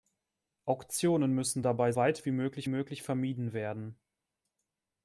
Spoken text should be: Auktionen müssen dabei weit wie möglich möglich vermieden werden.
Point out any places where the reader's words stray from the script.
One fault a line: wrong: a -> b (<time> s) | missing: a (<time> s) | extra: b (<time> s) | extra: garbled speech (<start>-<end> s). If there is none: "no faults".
no faults